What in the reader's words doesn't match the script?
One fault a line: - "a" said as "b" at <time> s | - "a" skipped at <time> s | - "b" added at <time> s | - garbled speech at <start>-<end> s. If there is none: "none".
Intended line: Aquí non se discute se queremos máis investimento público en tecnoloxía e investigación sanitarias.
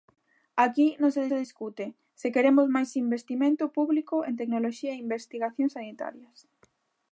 - "se" added at 1.3 s